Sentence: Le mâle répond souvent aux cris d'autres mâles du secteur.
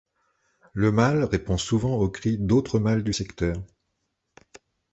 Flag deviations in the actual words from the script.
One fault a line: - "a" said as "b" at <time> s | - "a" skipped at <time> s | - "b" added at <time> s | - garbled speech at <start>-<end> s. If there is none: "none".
none